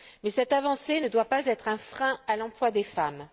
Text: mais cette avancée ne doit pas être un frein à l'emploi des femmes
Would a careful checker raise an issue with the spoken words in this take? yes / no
no